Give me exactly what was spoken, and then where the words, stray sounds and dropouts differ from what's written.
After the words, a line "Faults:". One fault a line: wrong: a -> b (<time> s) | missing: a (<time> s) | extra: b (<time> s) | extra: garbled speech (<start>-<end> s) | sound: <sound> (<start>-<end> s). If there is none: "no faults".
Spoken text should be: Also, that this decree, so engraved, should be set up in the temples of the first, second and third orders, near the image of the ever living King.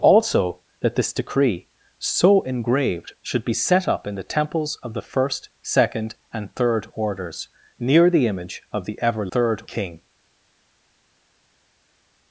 Also, that this decree, so engraved, should be set up in the temples of the first, second and third orders, near the image of the ever third King.
Faults:
wrong: living -> third (9.3 s)